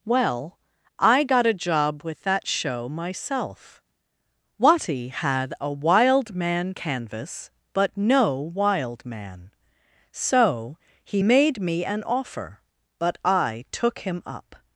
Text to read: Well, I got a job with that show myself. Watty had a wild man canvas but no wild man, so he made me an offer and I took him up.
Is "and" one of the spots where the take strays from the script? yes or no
yes